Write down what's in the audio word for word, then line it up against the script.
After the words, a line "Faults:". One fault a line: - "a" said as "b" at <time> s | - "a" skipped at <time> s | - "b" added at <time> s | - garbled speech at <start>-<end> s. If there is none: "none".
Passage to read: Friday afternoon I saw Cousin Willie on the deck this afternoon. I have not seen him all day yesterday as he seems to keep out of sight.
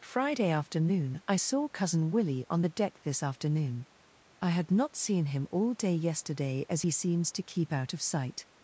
Friday afternoon I saw Cousin Willie on the deck this afternoon. I had not seen him all day yesterday as he seems to keep out of sight.
Faults:
- "have" said as "had" at 4.5 s